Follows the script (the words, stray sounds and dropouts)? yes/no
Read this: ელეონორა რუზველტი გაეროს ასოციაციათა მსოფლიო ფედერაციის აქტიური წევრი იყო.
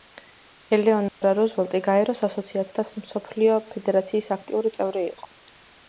no